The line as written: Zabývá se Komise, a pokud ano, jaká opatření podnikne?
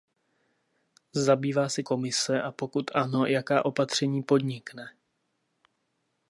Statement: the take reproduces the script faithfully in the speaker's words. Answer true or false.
true